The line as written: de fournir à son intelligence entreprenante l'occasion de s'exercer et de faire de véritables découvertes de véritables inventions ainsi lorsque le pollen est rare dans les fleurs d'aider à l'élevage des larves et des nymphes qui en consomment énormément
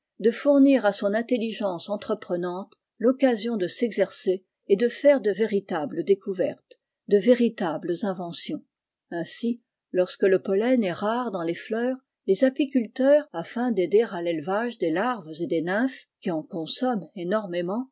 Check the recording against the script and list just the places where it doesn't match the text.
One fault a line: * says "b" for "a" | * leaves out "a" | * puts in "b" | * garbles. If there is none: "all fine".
* puts in "les apiculteurs afin"